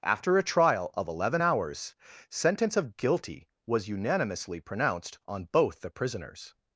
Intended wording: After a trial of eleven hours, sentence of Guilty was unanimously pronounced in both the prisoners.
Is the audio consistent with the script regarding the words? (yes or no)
no